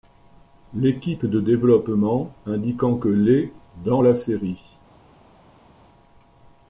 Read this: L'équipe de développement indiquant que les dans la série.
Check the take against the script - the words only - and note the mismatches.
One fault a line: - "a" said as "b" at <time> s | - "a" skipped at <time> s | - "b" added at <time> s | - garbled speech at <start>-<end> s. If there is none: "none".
none